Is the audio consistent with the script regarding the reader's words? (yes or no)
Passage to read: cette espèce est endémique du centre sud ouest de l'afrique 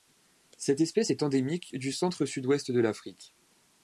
yes